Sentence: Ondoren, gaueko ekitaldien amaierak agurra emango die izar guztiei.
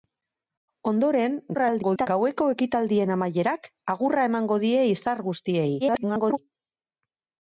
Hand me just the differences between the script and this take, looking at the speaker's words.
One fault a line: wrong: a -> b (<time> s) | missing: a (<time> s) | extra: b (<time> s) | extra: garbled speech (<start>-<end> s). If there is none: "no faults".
extra: garbled speech (1.5-2.1 s)
extra: garbled speech (5.8-6.4 s)